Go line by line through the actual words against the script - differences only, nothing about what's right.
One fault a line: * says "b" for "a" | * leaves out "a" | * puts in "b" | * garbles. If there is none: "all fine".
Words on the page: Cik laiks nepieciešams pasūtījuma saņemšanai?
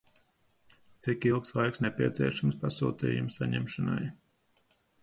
* puts in "ilgs"